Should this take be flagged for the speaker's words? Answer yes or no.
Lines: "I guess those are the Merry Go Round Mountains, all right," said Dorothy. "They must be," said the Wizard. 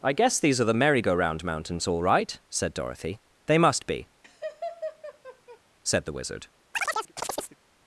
yes